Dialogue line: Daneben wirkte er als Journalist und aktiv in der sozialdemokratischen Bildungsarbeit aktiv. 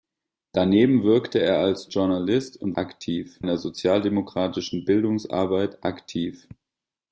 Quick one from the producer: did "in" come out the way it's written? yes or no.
yes